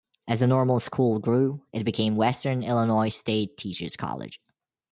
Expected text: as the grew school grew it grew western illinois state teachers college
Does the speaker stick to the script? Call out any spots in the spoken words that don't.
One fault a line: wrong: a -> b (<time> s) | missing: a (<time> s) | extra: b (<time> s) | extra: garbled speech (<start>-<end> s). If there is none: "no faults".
wrong: grew -> normal (0.5 s)
wrong: grew -> became (1.8 s)